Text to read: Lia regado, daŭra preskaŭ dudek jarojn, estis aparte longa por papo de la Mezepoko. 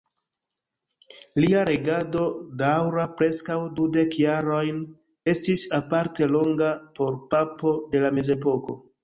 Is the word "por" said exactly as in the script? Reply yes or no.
yes